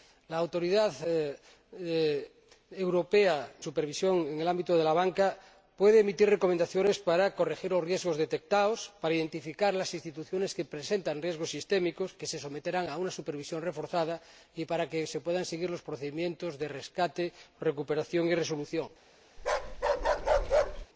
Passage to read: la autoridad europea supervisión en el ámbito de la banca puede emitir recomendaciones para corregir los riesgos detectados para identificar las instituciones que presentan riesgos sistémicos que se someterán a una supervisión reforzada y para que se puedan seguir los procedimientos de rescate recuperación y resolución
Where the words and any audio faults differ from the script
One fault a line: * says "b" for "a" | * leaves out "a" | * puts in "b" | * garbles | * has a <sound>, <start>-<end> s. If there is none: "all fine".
* has a bark, 19.4-20.9 s